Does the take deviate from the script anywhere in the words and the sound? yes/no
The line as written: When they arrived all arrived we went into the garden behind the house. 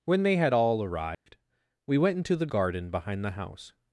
yes